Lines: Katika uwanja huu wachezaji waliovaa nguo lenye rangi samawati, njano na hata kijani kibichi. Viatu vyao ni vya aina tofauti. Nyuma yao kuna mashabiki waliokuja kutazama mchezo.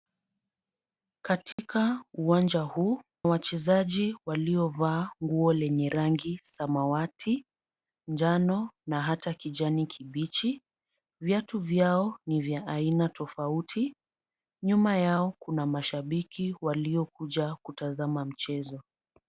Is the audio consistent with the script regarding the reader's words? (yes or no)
yes